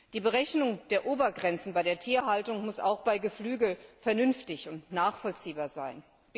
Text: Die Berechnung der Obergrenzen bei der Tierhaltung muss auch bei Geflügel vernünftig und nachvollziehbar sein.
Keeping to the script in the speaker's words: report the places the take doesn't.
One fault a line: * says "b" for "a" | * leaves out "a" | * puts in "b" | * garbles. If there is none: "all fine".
all fine